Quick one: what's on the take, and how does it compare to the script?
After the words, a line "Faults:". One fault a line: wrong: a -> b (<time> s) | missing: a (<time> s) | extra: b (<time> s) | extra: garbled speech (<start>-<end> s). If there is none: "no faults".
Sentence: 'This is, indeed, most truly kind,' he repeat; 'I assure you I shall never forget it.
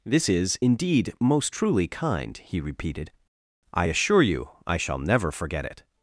'This is, indeed, most truly kind,' he repeated; 'I assure you I shall never forget it.
Faults:
wrong: repeat -> repeated (2.6 s)